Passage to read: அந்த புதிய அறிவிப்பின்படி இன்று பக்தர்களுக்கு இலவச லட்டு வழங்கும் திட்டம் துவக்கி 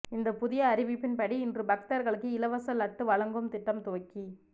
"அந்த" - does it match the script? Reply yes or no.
no